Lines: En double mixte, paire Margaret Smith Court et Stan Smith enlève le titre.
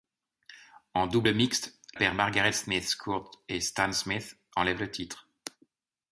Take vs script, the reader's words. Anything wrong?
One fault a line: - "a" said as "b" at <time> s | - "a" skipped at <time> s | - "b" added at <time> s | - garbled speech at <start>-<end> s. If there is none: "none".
none